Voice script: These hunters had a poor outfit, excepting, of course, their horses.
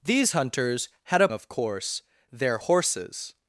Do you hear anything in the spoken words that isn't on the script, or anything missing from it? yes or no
yes